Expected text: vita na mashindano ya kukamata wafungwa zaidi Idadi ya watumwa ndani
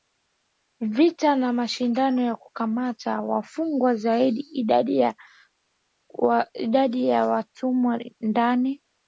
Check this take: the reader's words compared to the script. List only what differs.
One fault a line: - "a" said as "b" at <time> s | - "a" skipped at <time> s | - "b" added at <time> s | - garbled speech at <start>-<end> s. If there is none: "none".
none